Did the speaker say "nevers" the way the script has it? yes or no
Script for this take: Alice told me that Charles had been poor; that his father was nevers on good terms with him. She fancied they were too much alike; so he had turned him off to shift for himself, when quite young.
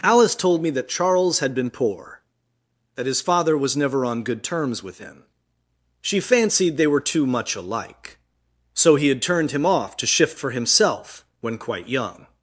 no